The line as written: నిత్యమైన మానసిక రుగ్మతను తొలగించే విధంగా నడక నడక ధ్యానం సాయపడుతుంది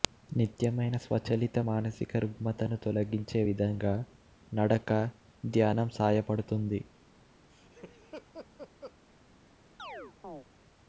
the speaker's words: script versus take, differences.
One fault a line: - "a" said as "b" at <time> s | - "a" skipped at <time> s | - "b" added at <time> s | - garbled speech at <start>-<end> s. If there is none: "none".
- "స్వచలిత" added at 1.0 s
- "నడక" skipped at 4.9 s